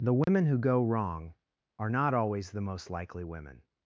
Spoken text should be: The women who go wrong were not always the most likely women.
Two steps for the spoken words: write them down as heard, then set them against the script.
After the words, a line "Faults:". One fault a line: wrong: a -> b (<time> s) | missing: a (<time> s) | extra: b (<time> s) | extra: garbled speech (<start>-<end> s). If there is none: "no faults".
The women who go wrong are not always the most likely women.
Faults:
wrong: were -> are (1.8 s)